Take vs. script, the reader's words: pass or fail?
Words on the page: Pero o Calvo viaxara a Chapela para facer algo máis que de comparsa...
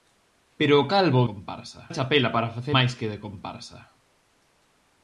fail